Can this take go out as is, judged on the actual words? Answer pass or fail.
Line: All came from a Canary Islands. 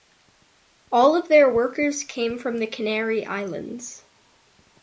fail